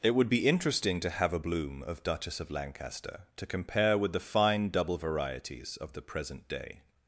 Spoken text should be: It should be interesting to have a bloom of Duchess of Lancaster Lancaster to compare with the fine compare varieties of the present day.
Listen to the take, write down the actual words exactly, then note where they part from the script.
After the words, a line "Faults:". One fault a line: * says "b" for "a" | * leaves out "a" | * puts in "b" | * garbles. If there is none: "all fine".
It would be interesting to have a bloom of Duchess of Lancaster to compare with the fine double varieties of the present day.
Faults:
* says "would" for "should"
* leaves out "Lancaster"
* says "double" for "compare"